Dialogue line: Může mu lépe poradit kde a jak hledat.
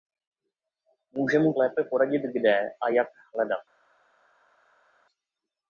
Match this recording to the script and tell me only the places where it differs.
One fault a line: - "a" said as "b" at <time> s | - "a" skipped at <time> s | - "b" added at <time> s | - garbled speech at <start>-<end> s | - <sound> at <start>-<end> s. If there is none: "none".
none